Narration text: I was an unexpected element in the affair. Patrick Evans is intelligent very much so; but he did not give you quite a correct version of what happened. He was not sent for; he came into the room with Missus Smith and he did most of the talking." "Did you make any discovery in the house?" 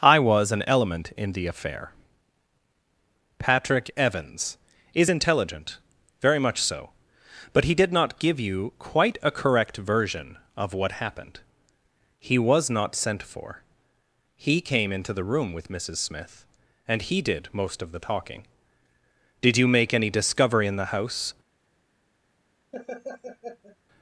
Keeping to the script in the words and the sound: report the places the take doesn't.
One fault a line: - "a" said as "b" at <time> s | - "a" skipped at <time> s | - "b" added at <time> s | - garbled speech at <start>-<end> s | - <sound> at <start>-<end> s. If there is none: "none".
- "unexpected" skipped at 0.6 s
- laugh at 22.7-23.8 s